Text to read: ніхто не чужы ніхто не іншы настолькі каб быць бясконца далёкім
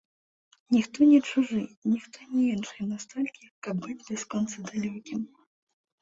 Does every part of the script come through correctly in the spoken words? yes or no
yes